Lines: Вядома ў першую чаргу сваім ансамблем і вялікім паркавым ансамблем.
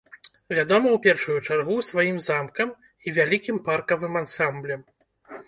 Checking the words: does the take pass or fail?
fail